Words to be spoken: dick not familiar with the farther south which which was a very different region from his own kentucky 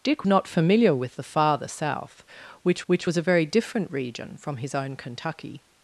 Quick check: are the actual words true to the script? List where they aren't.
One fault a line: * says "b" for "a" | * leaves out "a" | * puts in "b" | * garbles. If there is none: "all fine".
all fine